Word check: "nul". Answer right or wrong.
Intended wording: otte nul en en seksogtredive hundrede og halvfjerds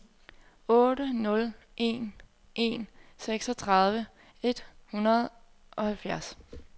right